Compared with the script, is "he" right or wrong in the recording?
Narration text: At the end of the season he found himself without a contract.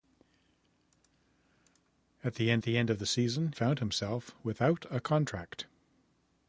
wrong